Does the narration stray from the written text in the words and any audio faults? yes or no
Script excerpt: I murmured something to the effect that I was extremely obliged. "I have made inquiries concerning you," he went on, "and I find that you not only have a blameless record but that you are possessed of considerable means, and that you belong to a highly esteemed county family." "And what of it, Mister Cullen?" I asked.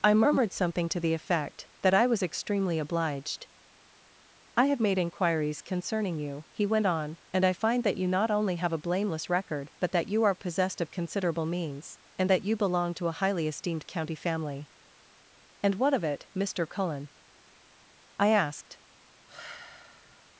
yes